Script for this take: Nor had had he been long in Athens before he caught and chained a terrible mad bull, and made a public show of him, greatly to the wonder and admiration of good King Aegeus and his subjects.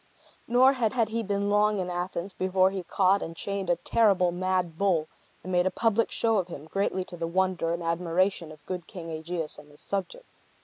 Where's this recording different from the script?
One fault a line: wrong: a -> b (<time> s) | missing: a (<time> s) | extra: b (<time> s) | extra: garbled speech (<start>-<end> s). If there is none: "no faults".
no faults